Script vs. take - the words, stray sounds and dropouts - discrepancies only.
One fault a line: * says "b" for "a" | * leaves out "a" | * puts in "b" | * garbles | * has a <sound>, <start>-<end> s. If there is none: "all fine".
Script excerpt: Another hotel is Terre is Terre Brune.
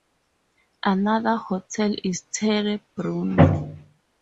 * leaves out "is Terre"